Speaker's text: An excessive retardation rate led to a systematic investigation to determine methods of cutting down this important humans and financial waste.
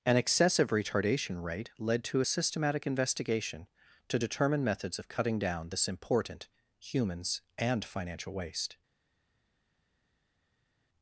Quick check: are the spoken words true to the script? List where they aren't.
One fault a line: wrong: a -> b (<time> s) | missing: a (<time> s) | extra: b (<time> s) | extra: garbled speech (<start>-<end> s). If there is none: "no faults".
no faults